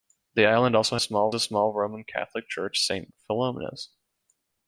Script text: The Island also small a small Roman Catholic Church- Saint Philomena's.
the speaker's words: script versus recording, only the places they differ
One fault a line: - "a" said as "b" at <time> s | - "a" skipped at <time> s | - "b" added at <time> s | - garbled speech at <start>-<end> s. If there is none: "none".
none